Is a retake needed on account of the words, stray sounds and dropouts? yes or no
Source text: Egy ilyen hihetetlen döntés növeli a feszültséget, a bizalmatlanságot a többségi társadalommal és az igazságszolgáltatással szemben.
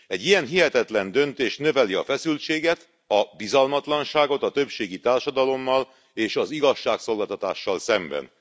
no